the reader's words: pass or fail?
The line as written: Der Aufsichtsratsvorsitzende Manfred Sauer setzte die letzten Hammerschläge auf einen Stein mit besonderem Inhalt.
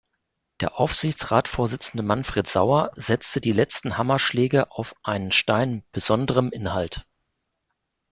pass